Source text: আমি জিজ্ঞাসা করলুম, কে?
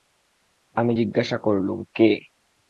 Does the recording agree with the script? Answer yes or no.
yes